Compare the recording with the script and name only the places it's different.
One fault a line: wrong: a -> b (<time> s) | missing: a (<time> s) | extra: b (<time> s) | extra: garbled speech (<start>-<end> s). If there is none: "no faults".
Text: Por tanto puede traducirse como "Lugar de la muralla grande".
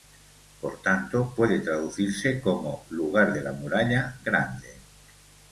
no faults